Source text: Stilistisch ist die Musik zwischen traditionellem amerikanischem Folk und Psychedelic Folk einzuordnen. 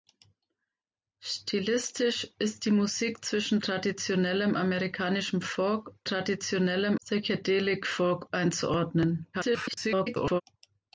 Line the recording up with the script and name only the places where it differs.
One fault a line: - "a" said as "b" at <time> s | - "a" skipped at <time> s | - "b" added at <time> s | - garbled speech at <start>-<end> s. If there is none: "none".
- "und" said as "traditionellem" at 6.0 s
- garbled speech at 9.3-10.4 s